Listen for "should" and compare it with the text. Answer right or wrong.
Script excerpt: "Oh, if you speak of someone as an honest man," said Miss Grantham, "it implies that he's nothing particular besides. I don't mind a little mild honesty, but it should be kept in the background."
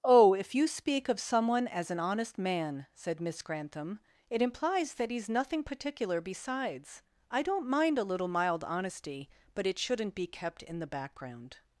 wrong